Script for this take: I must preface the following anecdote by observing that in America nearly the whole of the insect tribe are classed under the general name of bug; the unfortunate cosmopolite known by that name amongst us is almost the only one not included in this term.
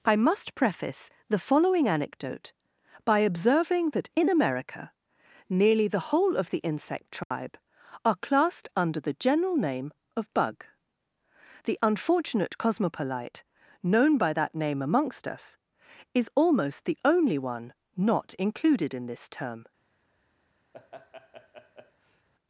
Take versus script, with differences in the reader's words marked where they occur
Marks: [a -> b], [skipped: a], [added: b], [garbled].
I must preface the following anecdote by observing that in America nearly the whole of the insect tribe are classed under the general name of bug; the unfortunate cosmopolite known by that name amongst us is almost the only one not included in this term.